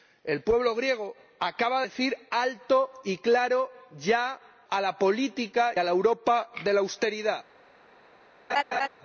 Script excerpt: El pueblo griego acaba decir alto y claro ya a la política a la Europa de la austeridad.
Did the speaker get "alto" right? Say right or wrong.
right